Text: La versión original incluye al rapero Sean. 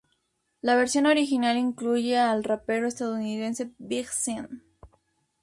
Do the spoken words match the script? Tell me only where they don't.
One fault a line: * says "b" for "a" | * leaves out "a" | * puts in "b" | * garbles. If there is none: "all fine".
* puts in "estadounidense Big"